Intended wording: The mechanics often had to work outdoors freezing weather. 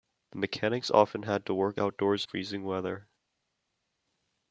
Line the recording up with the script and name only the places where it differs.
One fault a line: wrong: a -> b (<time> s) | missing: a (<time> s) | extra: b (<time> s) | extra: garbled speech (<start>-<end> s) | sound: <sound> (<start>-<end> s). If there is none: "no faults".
no faults